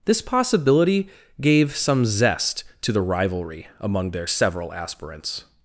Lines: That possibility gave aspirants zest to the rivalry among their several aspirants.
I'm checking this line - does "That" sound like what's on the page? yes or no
no